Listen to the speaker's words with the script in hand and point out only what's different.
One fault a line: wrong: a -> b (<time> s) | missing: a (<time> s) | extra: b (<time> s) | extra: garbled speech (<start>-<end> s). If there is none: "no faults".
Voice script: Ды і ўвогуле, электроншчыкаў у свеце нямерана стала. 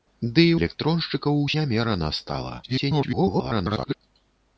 missing: ўвогуле (0.6 s)
missing: свеце (1.5 s)
extra: garbled speech (2.6-3.9 s)